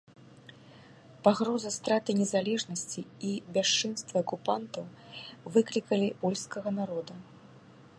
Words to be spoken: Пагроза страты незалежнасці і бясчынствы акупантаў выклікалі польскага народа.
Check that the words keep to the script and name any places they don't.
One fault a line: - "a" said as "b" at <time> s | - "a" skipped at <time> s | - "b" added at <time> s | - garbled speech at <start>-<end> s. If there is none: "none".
none